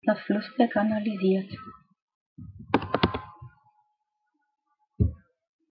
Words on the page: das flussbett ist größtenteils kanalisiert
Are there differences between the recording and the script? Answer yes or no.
yes